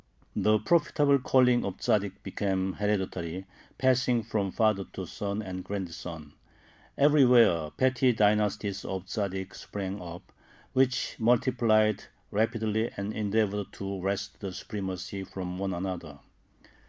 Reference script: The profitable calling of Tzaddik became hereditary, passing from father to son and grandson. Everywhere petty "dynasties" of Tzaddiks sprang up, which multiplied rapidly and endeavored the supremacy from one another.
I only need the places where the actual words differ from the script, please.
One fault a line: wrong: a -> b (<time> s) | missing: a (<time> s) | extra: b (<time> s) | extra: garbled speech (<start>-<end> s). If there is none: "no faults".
extra: to wrest (13.7 s)